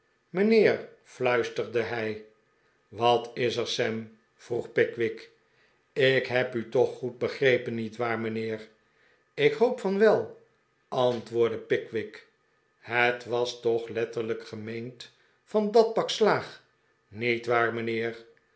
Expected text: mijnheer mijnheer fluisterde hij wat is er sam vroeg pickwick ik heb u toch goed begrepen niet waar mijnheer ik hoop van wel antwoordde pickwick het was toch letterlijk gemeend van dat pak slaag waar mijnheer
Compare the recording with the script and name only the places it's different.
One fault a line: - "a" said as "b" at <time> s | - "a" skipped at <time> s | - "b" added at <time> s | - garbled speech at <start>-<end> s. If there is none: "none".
- "mijnheer" skipped at 0.9 s
- "niet" added at 17.1 s